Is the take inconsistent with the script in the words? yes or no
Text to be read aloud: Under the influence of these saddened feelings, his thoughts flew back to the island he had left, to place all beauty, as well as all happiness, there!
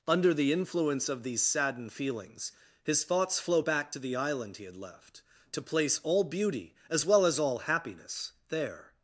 yes